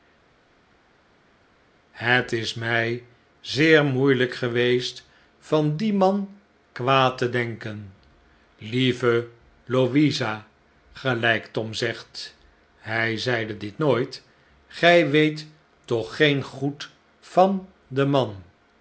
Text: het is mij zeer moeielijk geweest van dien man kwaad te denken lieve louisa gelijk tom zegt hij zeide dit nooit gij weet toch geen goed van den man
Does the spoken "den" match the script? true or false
true